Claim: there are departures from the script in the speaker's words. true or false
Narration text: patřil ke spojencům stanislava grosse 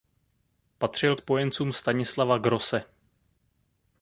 true